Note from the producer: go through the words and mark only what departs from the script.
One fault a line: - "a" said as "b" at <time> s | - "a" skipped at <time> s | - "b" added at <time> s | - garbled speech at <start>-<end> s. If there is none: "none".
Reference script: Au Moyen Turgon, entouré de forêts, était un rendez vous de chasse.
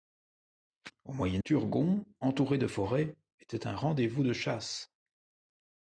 none